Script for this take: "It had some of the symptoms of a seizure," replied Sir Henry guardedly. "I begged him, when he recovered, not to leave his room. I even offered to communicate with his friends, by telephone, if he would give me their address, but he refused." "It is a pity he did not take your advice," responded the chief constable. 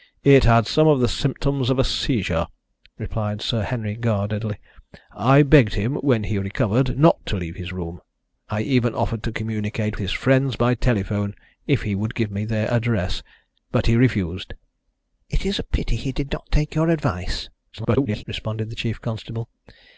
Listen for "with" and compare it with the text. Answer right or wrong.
wrong